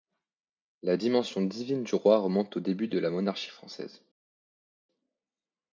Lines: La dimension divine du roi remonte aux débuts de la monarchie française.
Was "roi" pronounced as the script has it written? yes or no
yes